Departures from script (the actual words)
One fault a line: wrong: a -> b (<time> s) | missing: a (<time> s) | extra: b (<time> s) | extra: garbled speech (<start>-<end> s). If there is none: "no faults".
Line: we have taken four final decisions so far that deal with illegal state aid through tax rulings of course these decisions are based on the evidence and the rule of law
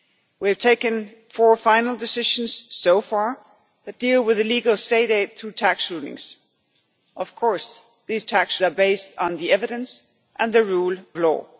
wrong: decisions -> tax (8.2 s)
missing: of (11.0 s)